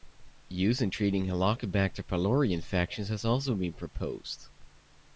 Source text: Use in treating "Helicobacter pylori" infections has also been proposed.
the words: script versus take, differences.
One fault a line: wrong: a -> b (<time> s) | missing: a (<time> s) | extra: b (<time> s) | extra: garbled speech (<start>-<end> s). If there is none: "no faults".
no faults